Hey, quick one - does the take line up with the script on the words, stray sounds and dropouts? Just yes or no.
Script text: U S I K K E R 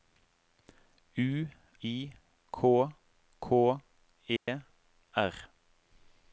no